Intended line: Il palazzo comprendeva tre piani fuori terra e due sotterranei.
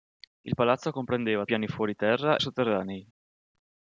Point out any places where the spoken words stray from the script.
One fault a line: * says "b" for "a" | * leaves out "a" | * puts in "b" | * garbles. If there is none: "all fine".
* leaves out "tre"
* leaves out "e due"